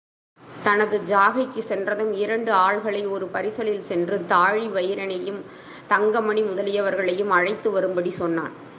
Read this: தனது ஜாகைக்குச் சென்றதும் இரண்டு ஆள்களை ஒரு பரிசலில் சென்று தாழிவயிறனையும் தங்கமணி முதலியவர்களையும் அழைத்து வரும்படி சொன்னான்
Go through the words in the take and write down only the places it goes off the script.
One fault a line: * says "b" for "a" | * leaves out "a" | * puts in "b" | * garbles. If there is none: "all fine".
all fine